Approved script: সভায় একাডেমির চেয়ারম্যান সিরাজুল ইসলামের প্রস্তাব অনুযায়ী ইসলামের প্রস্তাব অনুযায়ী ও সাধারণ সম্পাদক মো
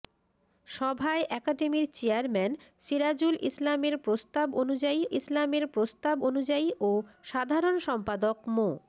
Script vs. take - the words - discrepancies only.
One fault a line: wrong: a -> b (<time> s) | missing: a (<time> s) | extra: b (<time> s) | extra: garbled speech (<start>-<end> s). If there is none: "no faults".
no faults